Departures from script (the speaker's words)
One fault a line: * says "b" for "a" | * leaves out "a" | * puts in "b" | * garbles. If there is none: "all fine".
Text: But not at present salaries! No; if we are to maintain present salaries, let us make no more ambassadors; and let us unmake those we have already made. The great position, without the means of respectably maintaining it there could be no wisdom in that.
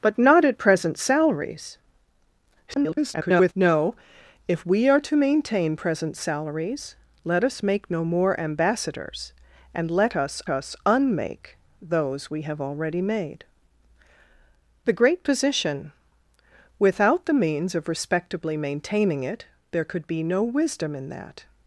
* garbles
* puts in "us"